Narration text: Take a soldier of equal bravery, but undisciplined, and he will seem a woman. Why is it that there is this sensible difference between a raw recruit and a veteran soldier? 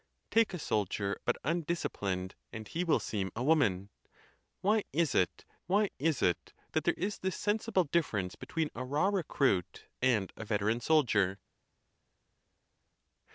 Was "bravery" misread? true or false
true